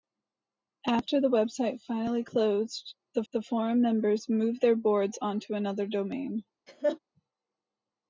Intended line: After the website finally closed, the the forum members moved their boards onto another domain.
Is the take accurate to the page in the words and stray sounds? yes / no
no